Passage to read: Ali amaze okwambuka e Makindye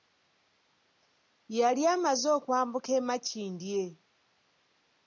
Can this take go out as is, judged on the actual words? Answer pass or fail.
fail